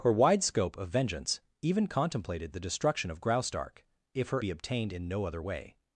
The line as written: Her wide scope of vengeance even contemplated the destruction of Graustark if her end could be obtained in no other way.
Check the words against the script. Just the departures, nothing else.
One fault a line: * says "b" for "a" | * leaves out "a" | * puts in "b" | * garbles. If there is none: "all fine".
* leaves out "end could"